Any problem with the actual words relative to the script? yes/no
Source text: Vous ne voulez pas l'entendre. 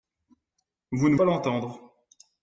yes